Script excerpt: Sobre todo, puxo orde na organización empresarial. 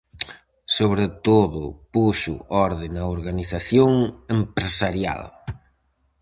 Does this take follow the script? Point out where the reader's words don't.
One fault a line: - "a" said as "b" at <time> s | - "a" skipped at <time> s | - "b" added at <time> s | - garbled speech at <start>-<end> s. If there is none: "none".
none